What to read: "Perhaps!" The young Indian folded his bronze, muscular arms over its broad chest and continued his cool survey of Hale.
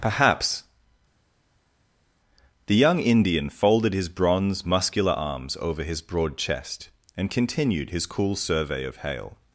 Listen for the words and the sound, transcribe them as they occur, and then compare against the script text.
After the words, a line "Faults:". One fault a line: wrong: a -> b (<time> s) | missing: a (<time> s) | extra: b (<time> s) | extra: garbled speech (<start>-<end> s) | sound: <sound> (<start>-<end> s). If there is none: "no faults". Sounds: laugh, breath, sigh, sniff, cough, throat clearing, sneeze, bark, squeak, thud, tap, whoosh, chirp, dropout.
"Perhaps!" The young Indian folded his bronze, muscular arms over his broad chest and continued his cool survey of Hale.
Faults:
wrong: its -> his (5.8 s)